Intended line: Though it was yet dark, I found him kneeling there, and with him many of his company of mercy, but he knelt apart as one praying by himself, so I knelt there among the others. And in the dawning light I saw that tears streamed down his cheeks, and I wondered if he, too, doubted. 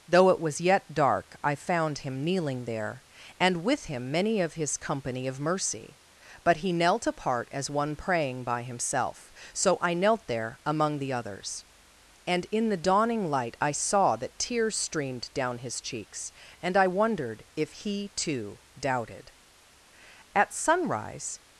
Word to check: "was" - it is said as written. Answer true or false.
true